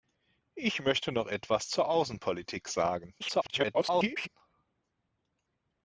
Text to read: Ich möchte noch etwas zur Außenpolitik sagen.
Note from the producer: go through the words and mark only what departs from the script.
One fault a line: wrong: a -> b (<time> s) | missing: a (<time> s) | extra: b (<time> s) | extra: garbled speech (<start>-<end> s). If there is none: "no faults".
extra: garbled speech (3.2-4.3 s)